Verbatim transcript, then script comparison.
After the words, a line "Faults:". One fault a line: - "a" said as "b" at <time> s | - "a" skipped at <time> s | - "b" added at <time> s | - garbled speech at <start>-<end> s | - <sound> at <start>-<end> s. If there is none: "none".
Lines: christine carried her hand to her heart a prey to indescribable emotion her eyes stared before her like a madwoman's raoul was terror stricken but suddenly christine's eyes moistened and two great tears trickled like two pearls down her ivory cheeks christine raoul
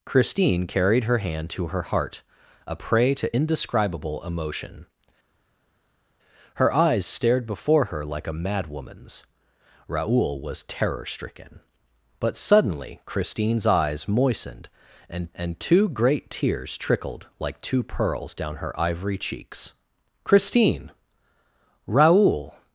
christine carried her hand to her heart a prey to indescribable emotion her eyes stared before her like a madwoman's raoul was terror stricken but suddenly christine's eyes moistened and and two great tears trickled like two pearls down her ivory cheeks christine raoul
Faults:
- "and" added at 15.4 s